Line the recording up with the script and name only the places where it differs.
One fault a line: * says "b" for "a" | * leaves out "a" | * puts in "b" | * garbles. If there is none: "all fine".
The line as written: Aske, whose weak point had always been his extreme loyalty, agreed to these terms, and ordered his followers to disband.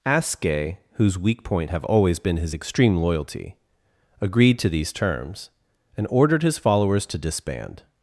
* says "have" for "had"